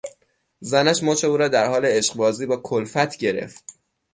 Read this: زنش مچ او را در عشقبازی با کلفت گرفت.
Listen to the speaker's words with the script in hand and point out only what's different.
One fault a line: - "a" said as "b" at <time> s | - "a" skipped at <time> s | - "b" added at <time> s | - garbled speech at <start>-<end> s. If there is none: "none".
- "حال" added at 1.7 s